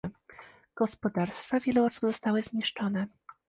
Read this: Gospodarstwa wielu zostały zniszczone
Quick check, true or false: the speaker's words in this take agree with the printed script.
false